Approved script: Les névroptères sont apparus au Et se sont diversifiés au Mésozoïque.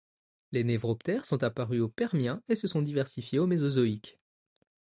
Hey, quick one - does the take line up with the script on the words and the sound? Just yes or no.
no